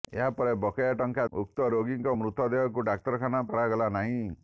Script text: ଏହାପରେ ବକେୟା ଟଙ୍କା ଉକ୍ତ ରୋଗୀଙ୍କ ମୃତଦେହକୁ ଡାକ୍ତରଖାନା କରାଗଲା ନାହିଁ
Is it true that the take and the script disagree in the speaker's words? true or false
false